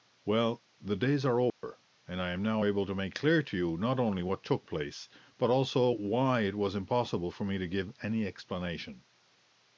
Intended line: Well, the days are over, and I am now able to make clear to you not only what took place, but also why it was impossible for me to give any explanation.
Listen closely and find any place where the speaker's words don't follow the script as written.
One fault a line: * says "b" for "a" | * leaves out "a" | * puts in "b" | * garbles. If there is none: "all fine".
all fine